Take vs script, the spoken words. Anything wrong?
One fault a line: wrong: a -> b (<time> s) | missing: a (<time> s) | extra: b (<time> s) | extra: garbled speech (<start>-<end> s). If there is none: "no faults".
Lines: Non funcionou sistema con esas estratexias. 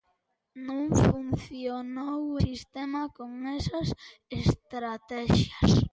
no faults